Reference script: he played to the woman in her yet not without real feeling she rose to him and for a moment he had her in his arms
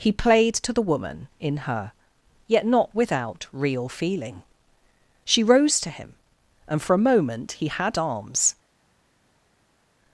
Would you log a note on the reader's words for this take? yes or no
yes